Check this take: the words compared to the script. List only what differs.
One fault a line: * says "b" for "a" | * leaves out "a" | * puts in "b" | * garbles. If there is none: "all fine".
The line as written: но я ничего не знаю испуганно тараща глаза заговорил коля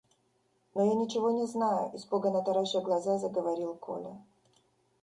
all fine